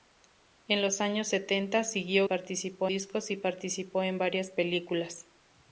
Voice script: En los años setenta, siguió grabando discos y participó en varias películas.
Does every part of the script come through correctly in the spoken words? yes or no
no